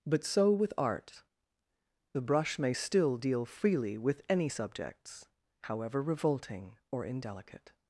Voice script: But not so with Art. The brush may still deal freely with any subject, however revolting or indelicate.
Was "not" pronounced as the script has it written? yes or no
no